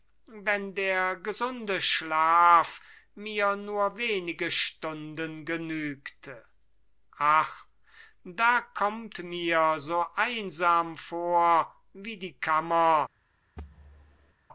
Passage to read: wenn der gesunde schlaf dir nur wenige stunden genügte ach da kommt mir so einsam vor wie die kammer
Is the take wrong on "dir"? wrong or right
wrong